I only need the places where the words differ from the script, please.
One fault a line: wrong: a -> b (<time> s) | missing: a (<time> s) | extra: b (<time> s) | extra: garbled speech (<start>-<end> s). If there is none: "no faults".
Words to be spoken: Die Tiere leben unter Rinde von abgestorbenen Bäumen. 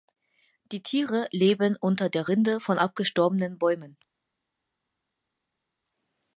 extra: der (2.1 s)